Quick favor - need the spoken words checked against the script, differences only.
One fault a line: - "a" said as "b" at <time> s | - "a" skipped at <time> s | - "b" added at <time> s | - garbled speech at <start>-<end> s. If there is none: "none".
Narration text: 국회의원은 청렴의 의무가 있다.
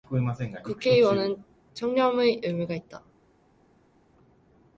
none